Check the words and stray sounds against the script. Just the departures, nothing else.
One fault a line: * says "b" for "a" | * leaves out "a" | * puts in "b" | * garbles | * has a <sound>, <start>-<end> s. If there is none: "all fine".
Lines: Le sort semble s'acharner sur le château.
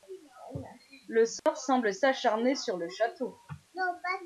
* has a dropout, 1.4-1.5 s